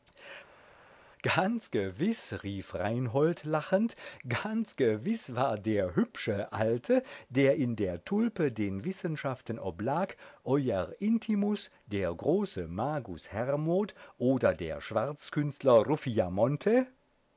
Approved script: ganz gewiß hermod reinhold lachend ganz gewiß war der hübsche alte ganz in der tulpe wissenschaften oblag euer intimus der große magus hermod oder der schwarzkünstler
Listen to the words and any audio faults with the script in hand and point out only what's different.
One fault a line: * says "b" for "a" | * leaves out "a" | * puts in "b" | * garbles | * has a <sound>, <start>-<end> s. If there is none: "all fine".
* says "rief" for "hermod"
* says "der" for "ganz"
* puts in "den"